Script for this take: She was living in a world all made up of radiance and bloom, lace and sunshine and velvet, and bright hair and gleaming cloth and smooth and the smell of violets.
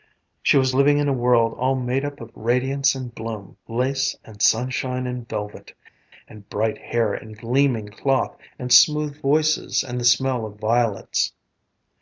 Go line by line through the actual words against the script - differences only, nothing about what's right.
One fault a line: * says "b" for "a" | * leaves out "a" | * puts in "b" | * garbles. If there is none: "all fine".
* puts in "voices"